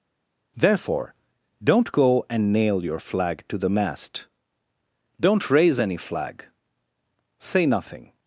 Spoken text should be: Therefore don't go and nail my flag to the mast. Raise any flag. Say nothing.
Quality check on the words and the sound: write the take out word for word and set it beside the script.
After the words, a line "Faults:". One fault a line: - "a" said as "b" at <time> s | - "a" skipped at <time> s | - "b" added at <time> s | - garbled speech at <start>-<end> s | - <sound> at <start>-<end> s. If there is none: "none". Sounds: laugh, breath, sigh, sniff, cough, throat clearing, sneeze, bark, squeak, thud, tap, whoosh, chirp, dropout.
Therefore don't go and nail your flag to the mast. Don't raise any flag. Say nothing.
Faults:
- "my" said as "your" at 2.8 s
- "Don't" added at 5.2 s